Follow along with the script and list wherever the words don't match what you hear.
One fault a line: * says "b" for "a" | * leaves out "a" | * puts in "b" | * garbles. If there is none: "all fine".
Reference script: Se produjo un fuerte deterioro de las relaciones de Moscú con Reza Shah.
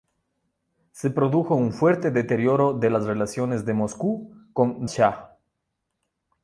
* leaves out "Reza"